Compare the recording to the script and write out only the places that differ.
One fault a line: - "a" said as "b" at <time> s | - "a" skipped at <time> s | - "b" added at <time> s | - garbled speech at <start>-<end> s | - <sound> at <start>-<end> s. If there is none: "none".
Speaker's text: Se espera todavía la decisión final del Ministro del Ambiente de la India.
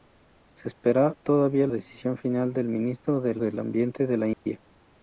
- "la" skipped at 1.7 s
- "del" added at 3.4 s
- dropout at 4.3-4.5 s